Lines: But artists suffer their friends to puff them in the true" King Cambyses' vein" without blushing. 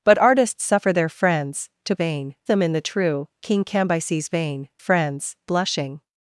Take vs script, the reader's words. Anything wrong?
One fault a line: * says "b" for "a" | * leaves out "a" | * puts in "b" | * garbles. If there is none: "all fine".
* says "vein" for "puff"
* says "friends" for "without"